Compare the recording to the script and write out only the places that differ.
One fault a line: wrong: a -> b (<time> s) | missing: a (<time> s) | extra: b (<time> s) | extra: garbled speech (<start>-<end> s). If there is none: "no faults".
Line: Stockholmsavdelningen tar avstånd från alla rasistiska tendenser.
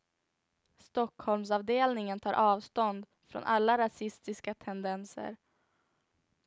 no faults